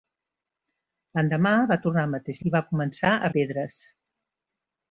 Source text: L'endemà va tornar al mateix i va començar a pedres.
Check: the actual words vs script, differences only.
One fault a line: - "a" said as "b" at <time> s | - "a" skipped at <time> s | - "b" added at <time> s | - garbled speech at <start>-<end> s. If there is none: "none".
none